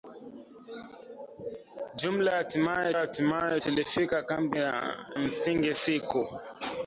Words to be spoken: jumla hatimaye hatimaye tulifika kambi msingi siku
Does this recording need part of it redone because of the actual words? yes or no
no